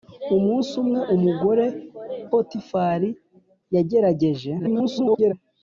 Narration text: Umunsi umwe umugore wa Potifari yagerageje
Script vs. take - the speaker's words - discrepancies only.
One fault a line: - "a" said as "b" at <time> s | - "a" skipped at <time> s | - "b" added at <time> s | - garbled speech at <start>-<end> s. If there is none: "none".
- "wa" skipped at 1.7 s
- garbled speech at 4.6-5.3 s